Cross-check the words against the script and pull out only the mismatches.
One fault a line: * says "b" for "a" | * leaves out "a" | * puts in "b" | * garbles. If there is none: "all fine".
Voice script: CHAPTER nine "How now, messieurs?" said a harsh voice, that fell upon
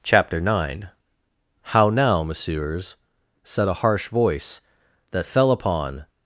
all fine